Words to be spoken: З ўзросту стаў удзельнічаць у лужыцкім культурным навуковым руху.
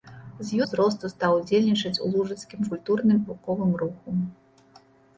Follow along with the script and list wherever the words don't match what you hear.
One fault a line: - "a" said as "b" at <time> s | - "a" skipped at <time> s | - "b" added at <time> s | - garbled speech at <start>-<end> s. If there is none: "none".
none